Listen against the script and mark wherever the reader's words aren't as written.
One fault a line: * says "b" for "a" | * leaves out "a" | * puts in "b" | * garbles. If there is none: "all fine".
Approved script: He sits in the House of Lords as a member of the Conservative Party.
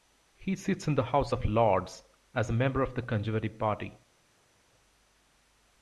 all fine